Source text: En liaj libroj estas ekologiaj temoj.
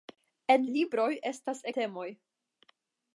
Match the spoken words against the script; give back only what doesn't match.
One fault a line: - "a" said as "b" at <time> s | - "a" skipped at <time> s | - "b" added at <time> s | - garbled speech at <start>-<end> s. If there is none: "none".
- "liaj" skipped at 0.6 s
- "ekologiaj" skipped at 1.6 s